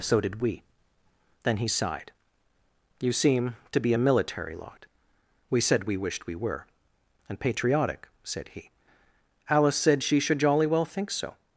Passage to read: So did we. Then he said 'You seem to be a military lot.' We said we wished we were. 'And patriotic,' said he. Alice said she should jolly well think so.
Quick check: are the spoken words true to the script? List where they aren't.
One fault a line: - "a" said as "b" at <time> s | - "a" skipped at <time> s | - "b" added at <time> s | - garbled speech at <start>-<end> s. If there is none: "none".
- "said" said as "sighed" at 1.7 s